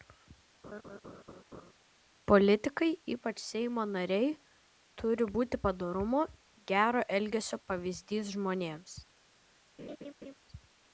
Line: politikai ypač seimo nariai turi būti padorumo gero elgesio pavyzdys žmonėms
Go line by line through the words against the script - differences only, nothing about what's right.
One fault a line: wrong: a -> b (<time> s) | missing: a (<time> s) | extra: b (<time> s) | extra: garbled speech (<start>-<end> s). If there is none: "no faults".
no faults